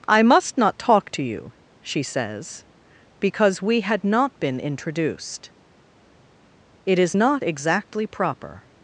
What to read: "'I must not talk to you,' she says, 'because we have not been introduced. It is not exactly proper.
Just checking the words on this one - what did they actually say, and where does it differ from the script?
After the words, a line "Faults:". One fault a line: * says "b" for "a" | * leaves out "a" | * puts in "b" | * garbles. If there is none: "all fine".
"'I must not talk to you,' she says, 'because we had not been introduced. It is not exactly proper.
Faults:
* says "had" for "have"